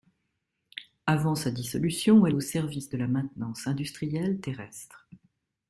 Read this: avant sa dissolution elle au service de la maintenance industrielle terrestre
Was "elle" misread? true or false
false